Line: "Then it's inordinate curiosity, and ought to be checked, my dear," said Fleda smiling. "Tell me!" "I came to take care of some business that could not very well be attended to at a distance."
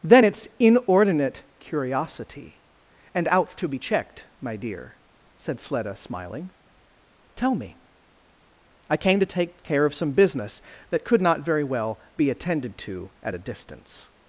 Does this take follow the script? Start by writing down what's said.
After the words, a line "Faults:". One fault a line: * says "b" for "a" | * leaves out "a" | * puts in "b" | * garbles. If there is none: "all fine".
"Then it's inordinate curiosity, and out to be checked, my dear," said Fleda smiling. "Tell me!" "I came to take care of some business that could not very well be attended to at a distance."
Faults:
* says "out" for "ought"